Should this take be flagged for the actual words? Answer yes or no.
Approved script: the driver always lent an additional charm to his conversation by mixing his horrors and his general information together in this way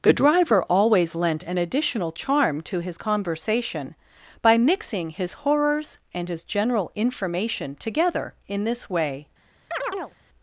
no